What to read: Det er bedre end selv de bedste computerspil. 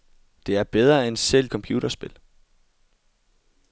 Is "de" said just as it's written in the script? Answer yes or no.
no